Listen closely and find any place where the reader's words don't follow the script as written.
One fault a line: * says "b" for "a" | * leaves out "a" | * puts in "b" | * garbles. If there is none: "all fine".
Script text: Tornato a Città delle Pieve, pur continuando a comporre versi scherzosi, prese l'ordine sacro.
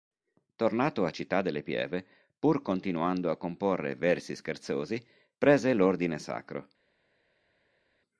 all fine